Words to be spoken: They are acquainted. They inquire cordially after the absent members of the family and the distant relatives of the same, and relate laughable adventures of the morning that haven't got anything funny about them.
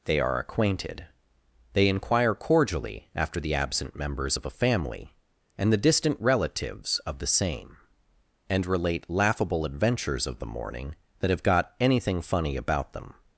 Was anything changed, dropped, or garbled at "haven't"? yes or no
yes